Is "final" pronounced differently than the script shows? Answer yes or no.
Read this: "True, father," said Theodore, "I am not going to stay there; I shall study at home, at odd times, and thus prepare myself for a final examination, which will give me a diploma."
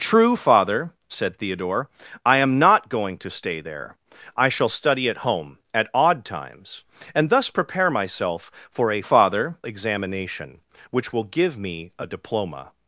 yes